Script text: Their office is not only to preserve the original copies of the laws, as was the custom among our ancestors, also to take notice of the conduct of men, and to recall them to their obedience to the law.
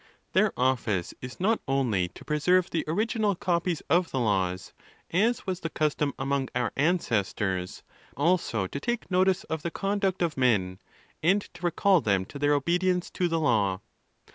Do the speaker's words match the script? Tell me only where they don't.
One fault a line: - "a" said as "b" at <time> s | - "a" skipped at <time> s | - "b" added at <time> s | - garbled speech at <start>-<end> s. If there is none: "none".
none